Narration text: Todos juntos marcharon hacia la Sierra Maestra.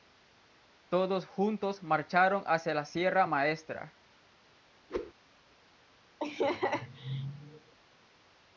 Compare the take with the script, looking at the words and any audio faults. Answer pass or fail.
fail